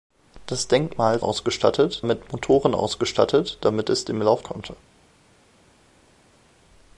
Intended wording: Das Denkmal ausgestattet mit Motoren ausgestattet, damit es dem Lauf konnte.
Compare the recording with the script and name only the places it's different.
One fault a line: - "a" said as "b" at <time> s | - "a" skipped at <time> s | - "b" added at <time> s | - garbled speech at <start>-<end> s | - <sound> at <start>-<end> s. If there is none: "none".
none